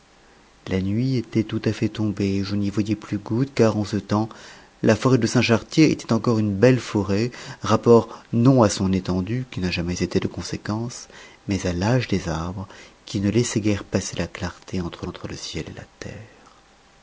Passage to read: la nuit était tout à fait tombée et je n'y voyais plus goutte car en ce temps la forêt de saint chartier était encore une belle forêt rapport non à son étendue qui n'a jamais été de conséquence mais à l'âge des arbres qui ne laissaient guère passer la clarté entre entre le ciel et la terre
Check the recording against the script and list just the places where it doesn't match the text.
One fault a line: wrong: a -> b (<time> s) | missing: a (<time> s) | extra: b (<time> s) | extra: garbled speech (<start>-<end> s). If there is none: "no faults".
no faults